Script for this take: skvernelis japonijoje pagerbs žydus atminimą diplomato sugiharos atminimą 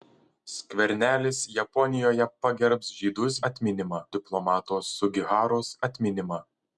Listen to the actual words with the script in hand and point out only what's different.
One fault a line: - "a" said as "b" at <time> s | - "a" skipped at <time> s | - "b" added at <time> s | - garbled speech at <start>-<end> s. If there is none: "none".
none